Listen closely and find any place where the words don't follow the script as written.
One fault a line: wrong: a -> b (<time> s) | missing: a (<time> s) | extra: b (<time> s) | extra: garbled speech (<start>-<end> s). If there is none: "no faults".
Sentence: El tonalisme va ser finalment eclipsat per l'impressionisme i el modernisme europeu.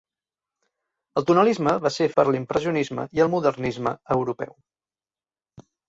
missing: finalment eclipsat (2.1 s)